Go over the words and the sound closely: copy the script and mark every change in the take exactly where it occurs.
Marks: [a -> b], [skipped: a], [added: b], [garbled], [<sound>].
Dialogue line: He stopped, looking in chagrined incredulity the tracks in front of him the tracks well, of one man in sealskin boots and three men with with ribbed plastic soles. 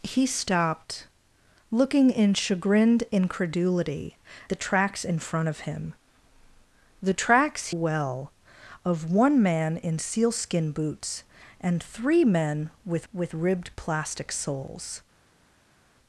He stopped, looking in chagrined incredulity the tracks in front of him the tracks well, of one man in sealskin boots and three men with with ribbed plastic soles.